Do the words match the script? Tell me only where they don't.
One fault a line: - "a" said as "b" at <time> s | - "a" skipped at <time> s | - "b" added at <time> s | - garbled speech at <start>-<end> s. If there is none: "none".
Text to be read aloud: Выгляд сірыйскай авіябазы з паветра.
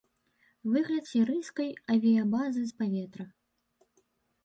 none